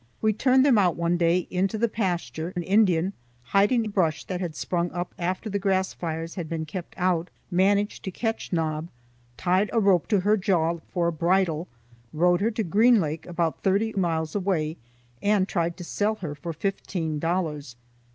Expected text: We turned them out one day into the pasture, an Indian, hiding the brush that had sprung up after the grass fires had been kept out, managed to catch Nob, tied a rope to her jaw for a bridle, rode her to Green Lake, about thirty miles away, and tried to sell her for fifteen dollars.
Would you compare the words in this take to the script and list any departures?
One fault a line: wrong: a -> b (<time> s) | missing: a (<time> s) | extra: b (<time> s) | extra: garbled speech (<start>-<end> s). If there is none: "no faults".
no faults